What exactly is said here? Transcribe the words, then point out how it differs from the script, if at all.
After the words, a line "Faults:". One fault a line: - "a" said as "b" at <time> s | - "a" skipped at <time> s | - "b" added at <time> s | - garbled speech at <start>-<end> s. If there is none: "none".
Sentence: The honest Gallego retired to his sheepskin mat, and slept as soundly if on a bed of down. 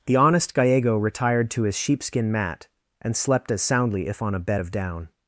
The honest Gallego retired to his sheepskin mat, and slept as soundly if on a bed of down.
Faults:
none